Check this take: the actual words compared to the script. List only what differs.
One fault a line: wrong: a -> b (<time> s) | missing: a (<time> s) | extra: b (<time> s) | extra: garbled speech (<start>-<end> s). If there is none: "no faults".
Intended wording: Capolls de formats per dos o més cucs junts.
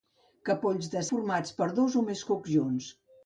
no faults